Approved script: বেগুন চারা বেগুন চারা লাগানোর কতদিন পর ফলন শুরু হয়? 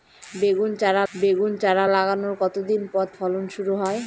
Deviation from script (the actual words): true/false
false